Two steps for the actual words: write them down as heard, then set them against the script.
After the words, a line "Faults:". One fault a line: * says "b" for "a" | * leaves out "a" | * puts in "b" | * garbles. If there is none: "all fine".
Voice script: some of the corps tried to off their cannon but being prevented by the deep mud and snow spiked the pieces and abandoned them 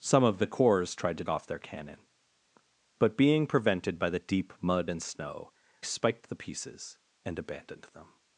some of the corps tried to off their cannon but being prevented by the deep mud and snow spiked the pieces and abandoned them
Faults:
all fine